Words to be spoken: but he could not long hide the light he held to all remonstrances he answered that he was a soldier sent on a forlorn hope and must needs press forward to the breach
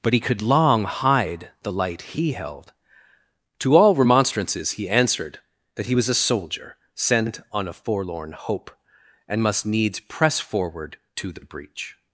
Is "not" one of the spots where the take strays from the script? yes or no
yes